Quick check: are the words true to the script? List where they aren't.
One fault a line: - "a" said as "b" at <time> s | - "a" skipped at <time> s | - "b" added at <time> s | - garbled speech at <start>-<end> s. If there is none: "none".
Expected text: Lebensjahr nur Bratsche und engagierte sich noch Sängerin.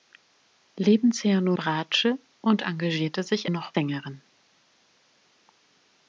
none